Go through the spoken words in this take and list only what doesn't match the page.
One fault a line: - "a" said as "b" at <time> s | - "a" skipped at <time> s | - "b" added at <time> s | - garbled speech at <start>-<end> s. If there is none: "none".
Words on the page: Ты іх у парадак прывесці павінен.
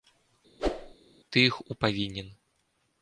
- "парадак прывесці" skipped at 1.8 s